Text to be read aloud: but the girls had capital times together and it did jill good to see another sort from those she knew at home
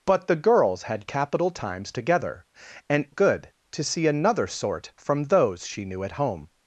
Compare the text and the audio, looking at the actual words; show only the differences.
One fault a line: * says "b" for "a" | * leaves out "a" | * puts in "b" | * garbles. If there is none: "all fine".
* leaves out "it did jill"